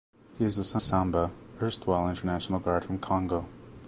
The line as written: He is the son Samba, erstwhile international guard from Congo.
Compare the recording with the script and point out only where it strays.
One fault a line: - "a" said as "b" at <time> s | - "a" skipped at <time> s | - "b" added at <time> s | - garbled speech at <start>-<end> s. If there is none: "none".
none